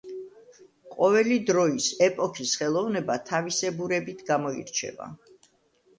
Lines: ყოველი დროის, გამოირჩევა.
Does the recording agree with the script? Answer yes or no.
no